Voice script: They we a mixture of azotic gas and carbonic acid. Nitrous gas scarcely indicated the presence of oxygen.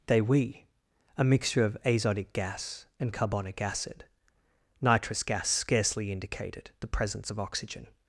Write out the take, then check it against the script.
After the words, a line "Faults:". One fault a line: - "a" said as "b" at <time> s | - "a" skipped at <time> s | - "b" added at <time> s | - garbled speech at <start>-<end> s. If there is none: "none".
They we a mixture of azotic gas and carbonic acid. Nitrous gas scarcely indicated the presence of oxygen.
Faults:
none